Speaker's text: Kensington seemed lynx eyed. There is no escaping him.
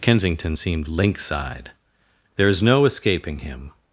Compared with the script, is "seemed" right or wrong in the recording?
right